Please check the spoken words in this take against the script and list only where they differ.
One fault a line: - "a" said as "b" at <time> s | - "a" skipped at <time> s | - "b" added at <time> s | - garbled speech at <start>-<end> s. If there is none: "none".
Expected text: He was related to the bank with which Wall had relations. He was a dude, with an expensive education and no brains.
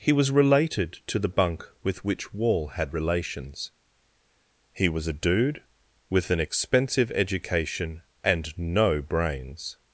- "bank" said as "bunk" at 1.3 s